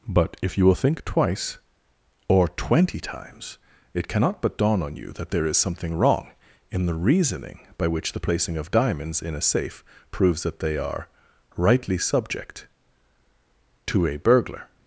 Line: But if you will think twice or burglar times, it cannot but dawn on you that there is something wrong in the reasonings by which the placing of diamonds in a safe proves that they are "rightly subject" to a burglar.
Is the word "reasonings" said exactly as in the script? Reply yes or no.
no